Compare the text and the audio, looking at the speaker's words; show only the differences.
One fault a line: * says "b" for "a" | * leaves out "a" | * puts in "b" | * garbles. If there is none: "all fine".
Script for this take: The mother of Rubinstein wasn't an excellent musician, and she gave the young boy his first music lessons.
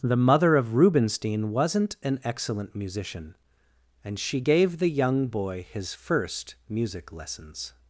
all fine